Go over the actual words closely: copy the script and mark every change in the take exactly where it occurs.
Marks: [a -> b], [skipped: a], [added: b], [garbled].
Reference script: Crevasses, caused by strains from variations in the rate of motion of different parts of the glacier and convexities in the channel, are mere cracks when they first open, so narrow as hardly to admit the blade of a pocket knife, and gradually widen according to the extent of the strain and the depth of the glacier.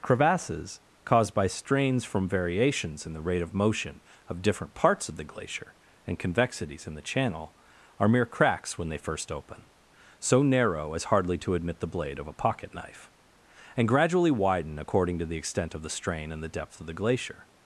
Crevasses, caused by strains from variations in the rate of motion of different parts of the glacier and convexities in the channel, are mere cracks when they first open, so narrow as hardly to admit the blade of a pocket knife, and gradually widen according to the extent of the strain and the depth of the glacier.